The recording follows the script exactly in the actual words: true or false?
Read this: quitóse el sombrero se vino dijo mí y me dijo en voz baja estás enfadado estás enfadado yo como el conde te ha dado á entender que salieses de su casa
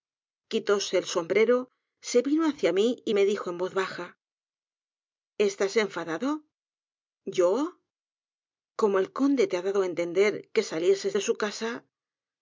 false